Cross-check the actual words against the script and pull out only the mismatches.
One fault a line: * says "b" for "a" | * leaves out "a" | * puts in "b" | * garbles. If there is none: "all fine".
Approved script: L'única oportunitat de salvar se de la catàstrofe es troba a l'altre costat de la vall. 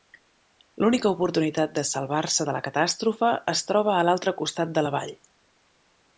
all fine